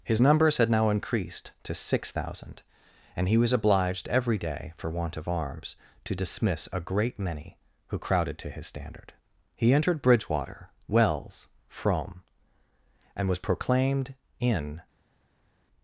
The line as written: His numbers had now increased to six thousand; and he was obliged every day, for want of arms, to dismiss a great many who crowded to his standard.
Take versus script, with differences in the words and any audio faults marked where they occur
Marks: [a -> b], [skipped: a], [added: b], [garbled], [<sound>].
His numbers had now increased to six thousand; and he was obliged every day, for want of arms, to dismiss a great many who crowded to his standard. [added: He entered Bridgewater Wells Frome and was proclaimed in]